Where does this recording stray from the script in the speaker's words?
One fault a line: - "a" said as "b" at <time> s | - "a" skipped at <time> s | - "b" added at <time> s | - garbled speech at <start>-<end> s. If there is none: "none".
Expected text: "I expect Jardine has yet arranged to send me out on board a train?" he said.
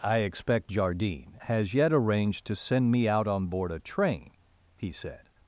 none